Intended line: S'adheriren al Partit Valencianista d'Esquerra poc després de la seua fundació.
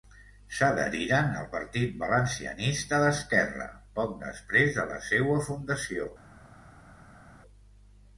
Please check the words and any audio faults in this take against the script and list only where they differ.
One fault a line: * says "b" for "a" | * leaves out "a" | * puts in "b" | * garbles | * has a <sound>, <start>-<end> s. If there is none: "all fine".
all fine